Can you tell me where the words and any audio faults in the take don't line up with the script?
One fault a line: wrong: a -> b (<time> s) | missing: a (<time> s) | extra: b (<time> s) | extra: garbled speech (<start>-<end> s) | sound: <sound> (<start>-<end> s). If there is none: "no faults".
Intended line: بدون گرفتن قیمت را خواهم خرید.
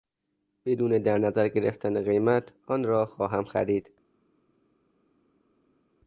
extra: در نظر (1.0 s)
extra: آن (2.7 s)